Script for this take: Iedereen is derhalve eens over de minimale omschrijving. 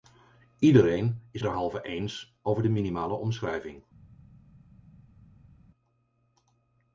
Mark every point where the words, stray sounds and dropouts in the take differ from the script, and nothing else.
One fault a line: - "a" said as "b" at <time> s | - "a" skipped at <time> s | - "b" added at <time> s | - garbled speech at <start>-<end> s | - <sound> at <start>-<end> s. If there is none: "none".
none